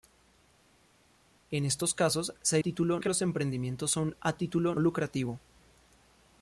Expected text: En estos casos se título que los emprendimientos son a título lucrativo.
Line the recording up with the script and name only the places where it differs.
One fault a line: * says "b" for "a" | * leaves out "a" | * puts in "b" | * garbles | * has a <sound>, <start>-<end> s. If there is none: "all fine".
all fine